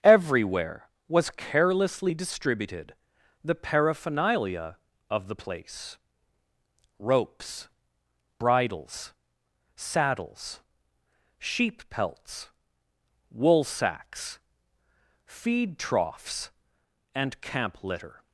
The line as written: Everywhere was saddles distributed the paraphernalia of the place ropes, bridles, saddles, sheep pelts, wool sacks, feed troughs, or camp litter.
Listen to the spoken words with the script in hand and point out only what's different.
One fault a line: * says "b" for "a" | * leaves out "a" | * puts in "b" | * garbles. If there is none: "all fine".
* says "carelessly" for "saddles"
* says "and" for "or"